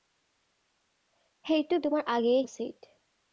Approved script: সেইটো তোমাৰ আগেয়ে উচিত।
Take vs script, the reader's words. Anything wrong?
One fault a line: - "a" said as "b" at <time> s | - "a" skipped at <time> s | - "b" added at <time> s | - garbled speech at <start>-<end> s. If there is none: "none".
none